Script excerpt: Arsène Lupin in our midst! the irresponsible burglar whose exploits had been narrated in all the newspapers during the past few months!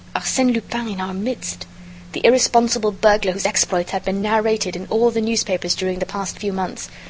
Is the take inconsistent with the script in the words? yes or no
no